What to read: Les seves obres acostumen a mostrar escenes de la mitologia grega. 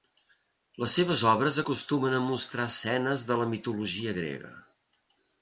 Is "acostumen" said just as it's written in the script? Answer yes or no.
yes